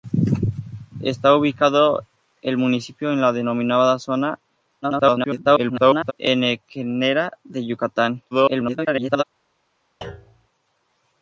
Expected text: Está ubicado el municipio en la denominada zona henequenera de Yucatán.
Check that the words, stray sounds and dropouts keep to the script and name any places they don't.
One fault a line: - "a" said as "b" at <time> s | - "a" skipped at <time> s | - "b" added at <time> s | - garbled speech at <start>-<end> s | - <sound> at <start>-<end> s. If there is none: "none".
- garbled speech at 4.8-6.1 s
- garbled speech at 8.3-9.2 s
- thud at 10.0-10.5 s